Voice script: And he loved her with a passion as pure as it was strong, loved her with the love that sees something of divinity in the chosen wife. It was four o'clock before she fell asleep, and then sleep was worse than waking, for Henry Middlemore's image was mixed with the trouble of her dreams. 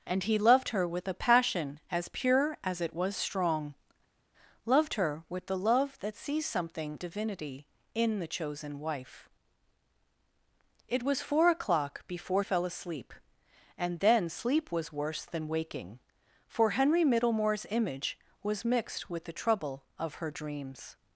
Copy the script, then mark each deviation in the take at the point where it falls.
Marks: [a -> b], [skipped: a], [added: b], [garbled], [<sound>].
And he loved her with a passion as pure as it was strong, loved her with the love that sees something [skipped: of] divinity in the chosen wife. It was four o'clock before [skipped: she] fell asleep, and then sleep was worse than waking, for Henry Middlemore's image was mixed with the trouble of her dreams.